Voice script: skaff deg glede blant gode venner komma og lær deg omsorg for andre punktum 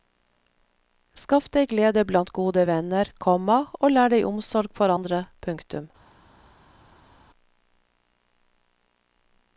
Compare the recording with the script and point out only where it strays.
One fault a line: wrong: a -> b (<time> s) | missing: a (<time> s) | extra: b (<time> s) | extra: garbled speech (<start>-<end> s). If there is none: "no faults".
no faults